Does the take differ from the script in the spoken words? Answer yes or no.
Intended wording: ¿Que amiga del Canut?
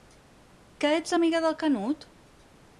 yes